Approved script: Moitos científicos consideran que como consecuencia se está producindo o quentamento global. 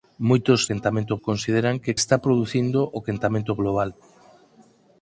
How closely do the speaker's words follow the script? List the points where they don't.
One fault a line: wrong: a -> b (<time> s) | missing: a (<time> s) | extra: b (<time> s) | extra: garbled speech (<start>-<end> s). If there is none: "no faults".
wrong: científicos -> quentamento (0.7 s)
missing: como consecuencia se (2.0 s)